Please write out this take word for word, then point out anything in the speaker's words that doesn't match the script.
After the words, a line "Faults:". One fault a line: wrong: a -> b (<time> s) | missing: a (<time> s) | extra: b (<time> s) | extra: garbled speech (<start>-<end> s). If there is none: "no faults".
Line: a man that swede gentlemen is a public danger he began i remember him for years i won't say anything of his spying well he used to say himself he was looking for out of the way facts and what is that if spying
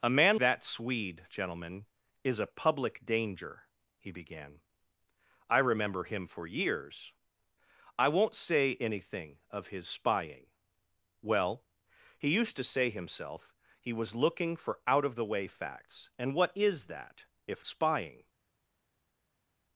a man that swede gentlemen is a public danger he began i remember him for years i won't say anything of his spying well he used to say himself he was looking for out of the way facts and what is that if spying
Faults:
no faults